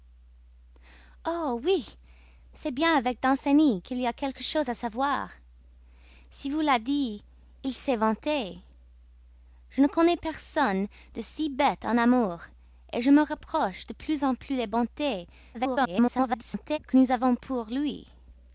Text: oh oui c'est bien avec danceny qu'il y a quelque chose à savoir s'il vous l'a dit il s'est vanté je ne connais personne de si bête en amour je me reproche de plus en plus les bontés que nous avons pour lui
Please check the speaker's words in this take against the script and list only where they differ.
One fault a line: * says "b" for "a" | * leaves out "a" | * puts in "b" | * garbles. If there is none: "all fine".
* garbles